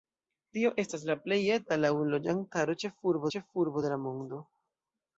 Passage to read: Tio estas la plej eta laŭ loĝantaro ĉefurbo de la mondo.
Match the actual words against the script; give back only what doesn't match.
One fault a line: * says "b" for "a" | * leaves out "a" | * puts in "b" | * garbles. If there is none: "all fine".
* puts in "ĉefurbo"